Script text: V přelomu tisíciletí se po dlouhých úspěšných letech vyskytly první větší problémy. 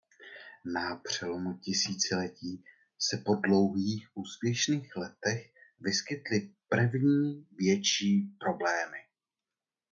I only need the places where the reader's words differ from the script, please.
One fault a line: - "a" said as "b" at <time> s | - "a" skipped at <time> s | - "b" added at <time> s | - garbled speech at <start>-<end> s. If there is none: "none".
- "V" said as "Na" at 0.8 s